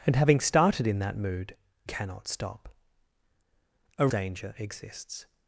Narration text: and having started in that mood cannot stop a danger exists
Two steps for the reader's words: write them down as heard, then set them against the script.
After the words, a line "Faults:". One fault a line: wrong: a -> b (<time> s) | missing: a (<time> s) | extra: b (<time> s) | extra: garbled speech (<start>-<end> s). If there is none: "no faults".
and having started in that mood cannot stop a danger exists
Faults:
no faults